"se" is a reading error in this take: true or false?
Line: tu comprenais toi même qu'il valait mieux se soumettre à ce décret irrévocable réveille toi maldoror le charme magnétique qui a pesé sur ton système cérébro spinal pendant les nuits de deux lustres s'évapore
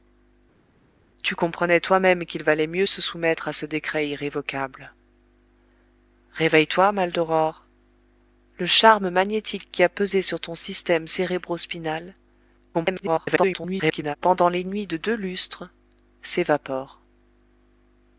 false